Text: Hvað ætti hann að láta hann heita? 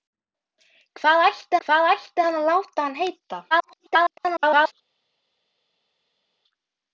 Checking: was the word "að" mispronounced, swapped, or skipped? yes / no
no